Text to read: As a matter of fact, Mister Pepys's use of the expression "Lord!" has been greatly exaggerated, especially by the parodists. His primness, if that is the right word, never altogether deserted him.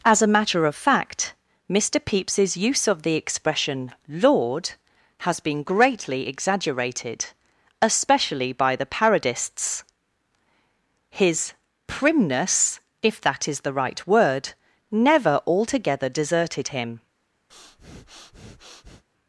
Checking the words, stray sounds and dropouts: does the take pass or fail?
fail